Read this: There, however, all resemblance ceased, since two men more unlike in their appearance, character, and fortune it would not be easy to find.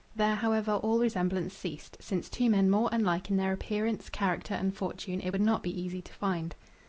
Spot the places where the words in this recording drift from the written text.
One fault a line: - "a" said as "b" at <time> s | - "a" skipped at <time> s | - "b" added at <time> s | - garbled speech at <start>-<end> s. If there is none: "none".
none